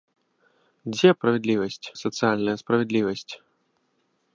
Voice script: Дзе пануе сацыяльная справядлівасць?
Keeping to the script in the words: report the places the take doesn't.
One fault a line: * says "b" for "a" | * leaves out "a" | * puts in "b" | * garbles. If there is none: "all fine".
* says "справядлівасць" for "пануе"